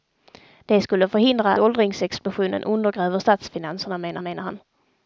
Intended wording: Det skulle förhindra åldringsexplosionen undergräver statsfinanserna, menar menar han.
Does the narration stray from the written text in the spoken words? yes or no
no